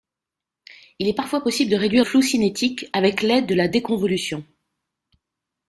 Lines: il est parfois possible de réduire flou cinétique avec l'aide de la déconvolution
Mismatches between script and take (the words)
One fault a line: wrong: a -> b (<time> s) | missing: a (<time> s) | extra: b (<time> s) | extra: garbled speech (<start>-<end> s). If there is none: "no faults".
no faults